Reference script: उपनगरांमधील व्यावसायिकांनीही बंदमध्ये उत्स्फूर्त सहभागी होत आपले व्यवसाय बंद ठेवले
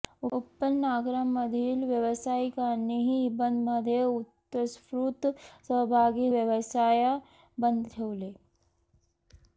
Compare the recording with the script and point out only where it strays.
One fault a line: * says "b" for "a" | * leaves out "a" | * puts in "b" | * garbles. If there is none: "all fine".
* leaves out "होत आपले"